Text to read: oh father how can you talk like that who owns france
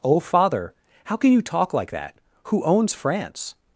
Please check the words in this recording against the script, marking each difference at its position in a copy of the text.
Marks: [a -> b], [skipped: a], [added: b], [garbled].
oh father how can you talk like that who owns france